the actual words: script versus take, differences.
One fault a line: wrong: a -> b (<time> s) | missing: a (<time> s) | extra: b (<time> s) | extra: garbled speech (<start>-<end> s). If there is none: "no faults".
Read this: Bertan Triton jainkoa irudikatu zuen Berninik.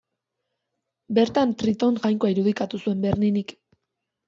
no faults